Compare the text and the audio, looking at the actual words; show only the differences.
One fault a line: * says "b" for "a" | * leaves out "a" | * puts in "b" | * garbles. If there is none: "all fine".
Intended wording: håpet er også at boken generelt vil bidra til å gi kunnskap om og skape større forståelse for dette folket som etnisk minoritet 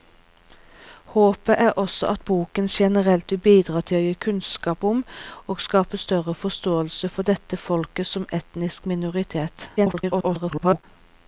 * garbles